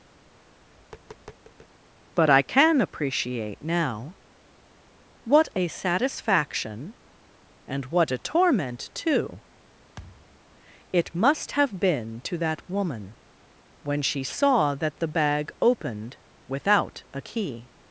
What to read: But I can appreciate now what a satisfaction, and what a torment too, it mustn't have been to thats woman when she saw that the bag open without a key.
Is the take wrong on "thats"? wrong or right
wrong